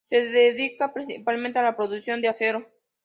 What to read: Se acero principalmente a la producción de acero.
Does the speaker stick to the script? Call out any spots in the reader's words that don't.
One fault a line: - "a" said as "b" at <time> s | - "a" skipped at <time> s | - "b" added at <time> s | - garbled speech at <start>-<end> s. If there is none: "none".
- "acero" said as "dedica" at 0.2 s